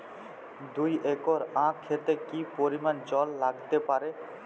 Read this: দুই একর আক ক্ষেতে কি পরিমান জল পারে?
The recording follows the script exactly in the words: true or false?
false